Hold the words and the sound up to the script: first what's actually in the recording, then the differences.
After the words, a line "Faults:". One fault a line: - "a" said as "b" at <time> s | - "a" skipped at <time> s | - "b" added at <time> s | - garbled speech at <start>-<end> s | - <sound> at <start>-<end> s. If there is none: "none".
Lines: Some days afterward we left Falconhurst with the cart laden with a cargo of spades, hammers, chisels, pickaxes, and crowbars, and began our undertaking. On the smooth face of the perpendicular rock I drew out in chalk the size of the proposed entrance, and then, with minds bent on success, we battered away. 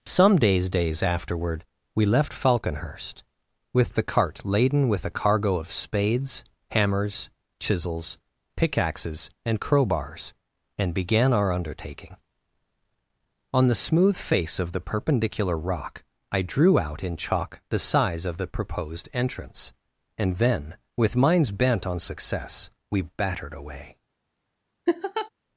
Some days days afterward we left Falconhurst with the cart laden with a cargo of spades, hammers, chisels, pickaxes, and crowbars, and began our undertaking. On the smooth face of the perpendicular rock I drew out in chalk the size of the proposed entrance, and then, with minds bent on success, we battered away.
Faults:
- "days" added at 0.7 s
- laugh at 24.9-25.3 s